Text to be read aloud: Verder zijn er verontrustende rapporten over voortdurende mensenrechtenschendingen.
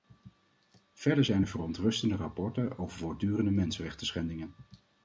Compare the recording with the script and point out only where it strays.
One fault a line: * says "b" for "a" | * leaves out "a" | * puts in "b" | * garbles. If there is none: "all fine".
all fine